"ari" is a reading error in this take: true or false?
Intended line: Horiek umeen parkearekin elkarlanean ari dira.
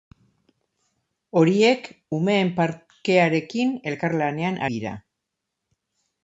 true